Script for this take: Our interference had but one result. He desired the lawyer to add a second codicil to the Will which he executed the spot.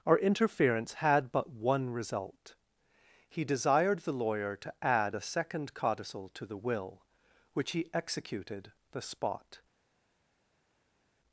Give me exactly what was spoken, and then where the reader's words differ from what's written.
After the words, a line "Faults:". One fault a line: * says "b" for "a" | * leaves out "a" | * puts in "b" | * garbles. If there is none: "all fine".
Our interference had but one result. He desired the lawyer to add a second codicil to the Will which he executed the spot.
Faults:
all fine